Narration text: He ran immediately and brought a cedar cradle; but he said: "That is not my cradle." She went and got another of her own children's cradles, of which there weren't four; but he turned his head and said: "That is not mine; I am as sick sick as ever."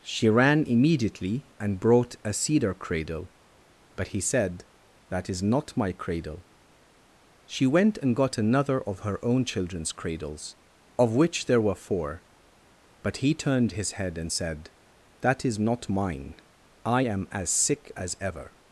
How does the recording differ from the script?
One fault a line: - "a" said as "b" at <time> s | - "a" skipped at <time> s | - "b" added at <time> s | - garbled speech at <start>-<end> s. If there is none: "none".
- "He" said as "She" at 0.0 s
- "weren't" said as "were" at 11.6 s
- "sick" skipped at 17.9 s